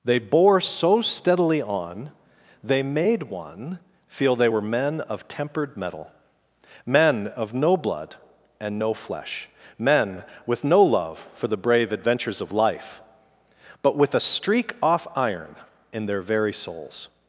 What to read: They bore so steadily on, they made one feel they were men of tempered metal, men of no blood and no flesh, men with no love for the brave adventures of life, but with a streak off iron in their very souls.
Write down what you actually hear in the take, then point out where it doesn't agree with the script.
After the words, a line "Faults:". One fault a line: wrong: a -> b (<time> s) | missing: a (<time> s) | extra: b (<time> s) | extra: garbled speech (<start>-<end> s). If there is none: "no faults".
They bore so steadily on, they made one feel they were men of tempered metal, men of no blood and no flesh, men with no love for the brave adventures of life, but with a streak off iron in their very souls.
Faults:
no faults